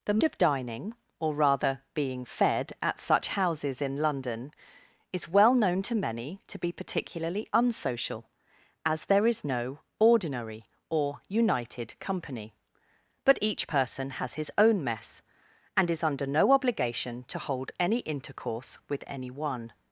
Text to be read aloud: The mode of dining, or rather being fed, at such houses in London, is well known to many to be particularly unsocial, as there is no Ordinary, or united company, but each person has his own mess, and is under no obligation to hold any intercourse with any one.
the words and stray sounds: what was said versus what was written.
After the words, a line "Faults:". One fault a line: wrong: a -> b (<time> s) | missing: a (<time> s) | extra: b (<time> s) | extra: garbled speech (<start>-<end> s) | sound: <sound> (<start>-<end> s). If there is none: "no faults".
The of dining, or rather being fed, at such houses in London, is well known to many to be particularly unsocial, as there is no Ordinary, or united company, but each person has his own mess, and is under no obligation to hold any intercourse with any one.
Faults:
missing: mode (0.2 s)